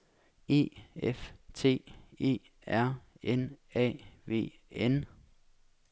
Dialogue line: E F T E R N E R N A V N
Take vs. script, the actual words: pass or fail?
fail